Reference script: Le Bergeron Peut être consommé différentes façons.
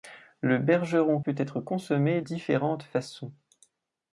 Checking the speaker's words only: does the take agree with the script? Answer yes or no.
yes